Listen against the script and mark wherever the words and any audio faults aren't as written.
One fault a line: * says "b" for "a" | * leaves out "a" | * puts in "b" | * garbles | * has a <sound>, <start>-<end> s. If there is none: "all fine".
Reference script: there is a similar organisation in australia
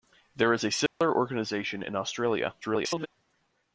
* has a dropout, 0.9-1.0 s
* garbles